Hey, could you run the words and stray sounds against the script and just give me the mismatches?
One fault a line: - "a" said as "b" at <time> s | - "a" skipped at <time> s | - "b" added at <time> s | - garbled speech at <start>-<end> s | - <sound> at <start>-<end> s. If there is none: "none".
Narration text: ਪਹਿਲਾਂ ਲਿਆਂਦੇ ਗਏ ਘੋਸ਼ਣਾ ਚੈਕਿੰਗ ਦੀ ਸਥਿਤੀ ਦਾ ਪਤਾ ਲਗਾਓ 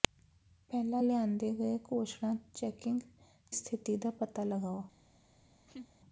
- "ਦੀ" skipped at 3.0 s
- laugh at 5.7-5.9 s